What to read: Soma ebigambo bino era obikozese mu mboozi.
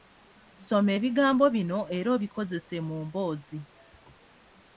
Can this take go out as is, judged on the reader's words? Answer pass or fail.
pass